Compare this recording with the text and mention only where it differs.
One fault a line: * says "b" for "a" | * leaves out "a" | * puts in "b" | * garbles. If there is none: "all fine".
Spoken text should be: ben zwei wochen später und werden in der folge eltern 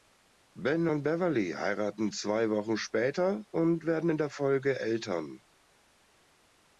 * puts in "und beverly heiraten"